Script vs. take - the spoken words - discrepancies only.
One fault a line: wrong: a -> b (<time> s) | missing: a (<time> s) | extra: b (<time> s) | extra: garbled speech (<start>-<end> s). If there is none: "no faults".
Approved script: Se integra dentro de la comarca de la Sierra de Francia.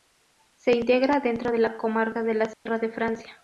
no faults